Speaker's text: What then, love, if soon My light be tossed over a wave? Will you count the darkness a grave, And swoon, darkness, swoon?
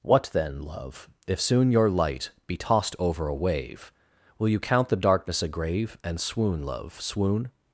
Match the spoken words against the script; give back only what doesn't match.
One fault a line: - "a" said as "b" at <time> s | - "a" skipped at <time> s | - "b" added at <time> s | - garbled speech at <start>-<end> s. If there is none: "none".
- "My" said as "Your" at 1.7 s
- "darkness" said as "love" at 6.6 s